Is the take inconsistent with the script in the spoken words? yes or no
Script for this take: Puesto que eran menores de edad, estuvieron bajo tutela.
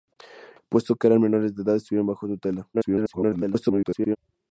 yes